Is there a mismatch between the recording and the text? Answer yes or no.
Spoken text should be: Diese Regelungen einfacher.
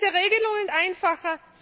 no